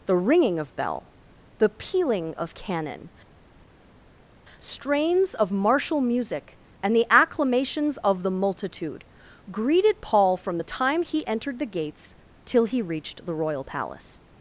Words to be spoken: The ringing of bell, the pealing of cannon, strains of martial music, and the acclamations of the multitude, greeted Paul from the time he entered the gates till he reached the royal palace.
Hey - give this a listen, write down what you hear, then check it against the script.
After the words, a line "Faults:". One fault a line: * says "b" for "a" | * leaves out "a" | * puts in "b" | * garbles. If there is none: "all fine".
The ringing of bell, the pealing of cannon, strains of martial music, and the acclamations of the multitude, greeted Paul from the time he entered the gates till he reached the royal palace.
Faults:
all fine